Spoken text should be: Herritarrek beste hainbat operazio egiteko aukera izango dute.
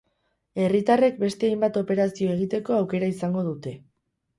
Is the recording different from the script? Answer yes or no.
no